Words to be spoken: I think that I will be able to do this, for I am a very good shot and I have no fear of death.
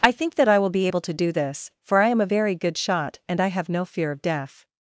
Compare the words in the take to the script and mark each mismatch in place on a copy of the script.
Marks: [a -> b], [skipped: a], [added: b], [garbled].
I think that I will be able to do this, for I am a very good shot and I have no fear of death.